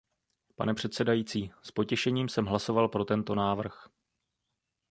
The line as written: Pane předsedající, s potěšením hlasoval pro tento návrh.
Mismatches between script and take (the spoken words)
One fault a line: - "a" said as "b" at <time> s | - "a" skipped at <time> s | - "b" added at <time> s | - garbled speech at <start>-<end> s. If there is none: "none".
- "jsem" added at 2.3 s